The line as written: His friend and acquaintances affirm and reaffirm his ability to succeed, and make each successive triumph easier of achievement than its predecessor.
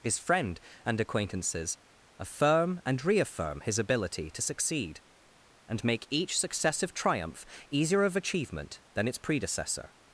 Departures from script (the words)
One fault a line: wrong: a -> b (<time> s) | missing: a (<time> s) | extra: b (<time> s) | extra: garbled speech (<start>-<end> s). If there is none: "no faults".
no faults